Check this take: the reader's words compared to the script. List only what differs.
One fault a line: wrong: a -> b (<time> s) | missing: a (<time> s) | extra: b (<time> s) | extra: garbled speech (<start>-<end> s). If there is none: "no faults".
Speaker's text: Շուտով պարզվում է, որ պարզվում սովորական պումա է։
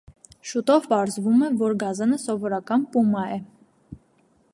wrong: պարզվում -> գազանը (1.8 s)